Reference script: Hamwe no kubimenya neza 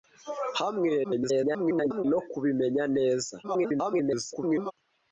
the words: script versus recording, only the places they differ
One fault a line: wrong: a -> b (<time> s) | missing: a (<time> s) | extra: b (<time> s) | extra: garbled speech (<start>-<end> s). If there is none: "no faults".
extra: garbled speech (1.0-2.0 s)
extra: garbled speech (3.4-4.7 s)